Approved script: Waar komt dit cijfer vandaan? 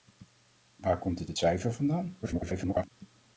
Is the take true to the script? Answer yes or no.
no